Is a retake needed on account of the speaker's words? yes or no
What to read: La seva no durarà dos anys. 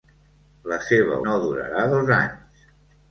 no